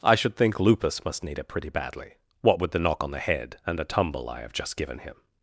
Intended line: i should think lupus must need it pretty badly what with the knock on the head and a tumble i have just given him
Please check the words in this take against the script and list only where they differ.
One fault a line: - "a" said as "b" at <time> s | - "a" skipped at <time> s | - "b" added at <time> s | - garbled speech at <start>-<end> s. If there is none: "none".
none